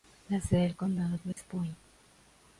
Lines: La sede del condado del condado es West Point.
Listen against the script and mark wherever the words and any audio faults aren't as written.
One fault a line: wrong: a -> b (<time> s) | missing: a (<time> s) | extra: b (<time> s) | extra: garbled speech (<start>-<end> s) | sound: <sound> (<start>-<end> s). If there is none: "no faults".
missing: del condado (1.1 s)
sound: dropout (1.3-1.4 s)